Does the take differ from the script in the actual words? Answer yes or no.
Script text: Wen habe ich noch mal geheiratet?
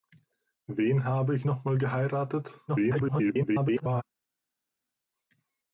yes